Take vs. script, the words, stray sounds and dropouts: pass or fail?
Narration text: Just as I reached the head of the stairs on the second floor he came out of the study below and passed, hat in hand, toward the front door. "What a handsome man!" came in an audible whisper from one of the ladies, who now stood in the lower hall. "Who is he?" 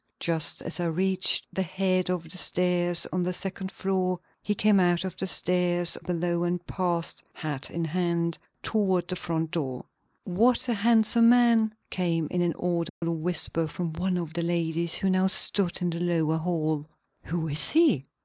fail